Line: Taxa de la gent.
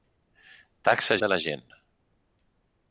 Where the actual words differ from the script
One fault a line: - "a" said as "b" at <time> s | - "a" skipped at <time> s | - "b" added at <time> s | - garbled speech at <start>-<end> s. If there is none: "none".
none